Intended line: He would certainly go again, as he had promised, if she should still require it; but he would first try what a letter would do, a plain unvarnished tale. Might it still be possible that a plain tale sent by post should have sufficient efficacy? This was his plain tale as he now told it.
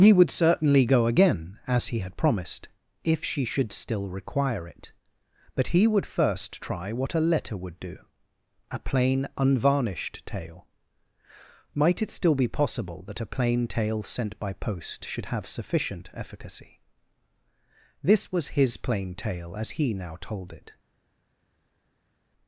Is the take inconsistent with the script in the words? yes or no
no